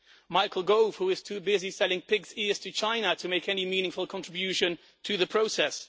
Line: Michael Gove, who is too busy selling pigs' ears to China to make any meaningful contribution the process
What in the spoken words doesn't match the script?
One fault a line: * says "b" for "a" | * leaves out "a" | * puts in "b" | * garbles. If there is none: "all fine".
* puts in "to"